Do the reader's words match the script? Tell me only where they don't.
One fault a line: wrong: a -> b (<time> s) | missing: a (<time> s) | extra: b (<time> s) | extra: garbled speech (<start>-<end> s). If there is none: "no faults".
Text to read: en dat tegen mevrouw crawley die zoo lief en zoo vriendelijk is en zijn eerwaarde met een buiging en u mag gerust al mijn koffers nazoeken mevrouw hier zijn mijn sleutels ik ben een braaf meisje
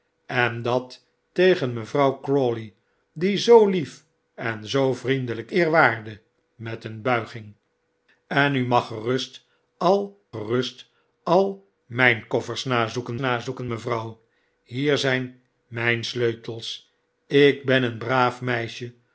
missing: is en zijn (5.5 s)
extra: gerust al (10.3 s)
extra: nazoeken (13.2 s)